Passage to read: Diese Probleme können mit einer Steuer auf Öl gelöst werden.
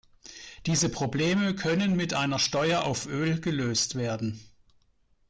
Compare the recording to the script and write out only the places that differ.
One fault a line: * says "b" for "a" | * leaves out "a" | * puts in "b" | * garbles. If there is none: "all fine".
all fine